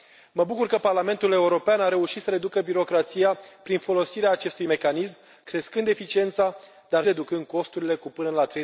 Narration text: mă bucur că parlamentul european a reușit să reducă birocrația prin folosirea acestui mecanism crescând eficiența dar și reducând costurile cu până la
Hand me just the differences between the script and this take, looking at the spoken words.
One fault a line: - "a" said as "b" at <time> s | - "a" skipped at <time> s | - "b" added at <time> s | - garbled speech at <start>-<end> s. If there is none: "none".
- "și" skipped at 7.0 s